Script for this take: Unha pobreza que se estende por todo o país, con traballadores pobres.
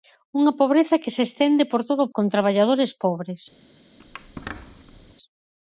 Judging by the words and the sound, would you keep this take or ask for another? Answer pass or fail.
fail